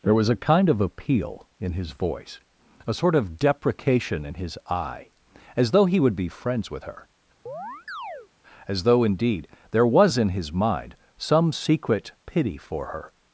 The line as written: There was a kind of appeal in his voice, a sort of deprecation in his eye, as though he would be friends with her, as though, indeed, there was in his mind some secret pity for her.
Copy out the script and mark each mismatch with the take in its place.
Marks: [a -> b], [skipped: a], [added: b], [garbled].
There was a kind of appeal in his voice, a sort of deprecation in his eye, as though he would be friends with her, as though, indeed, there was in his mind some secret pity for her.